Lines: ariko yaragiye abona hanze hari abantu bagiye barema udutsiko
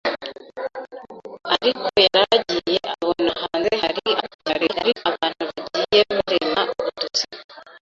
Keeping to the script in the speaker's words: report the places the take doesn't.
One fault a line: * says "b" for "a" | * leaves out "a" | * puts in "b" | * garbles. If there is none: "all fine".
* garbles